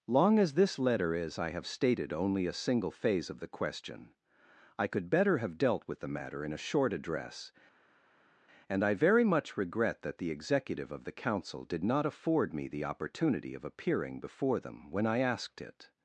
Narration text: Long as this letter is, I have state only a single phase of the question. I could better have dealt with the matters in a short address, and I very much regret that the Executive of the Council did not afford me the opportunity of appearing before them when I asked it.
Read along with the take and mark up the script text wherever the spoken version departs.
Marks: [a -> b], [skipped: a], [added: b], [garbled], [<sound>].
Long as this letter is, I have [state -> stated] only a single phase of the question. I could better have dealt with the [matters -> matter] in a short address, and I very much regret that the Executive of the Council did not afford me the opportunity of appearing before them when I asked it.